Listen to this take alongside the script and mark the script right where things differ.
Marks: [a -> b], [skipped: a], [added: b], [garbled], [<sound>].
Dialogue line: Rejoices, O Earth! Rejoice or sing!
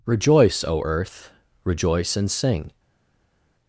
[Rejoices, -> Rejoice] O Earth! Rejoice [or -> and] sing!